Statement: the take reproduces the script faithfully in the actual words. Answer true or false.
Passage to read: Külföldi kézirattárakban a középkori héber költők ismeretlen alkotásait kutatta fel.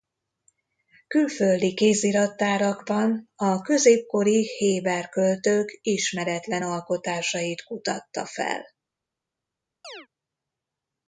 true